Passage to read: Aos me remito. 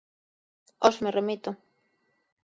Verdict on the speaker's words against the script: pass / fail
pass